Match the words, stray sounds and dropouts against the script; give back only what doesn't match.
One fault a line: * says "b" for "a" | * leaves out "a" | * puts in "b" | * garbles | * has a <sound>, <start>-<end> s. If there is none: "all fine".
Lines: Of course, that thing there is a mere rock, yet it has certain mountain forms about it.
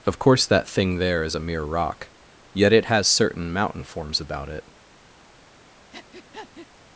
* has a breath, 5.9-6.7 s